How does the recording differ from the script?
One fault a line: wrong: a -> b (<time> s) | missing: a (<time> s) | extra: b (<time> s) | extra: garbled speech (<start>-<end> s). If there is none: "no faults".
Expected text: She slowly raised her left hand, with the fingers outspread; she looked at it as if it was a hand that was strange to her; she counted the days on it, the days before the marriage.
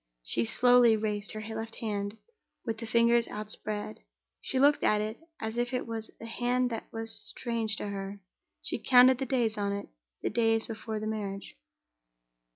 no faults